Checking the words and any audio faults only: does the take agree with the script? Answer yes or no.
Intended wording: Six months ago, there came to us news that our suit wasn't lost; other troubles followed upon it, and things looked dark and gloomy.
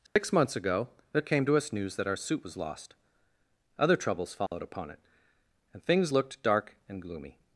no